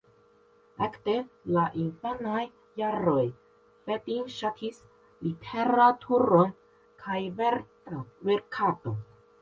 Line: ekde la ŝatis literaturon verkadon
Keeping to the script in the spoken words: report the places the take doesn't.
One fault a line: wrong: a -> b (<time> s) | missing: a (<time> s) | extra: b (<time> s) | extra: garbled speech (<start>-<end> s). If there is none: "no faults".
extra: infanaj jaroj fedin (1.8 s)
extra: kaj (7.0 s)